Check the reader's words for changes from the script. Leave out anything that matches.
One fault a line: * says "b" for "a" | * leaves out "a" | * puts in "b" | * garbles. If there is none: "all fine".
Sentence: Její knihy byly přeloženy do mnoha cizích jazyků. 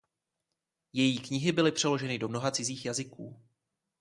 all fine